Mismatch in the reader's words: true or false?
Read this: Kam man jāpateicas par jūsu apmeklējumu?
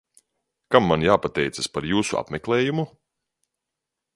false